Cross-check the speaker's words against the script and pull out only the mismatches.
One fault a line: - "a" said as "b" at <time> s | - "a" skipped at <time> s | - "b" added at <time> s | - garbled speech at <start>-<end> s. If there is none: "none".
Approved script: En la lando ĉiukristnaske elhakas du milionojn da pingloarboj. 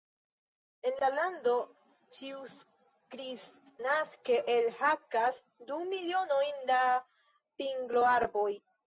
none